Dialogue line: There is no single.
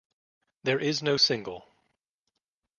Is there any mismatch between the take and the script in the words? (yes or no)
no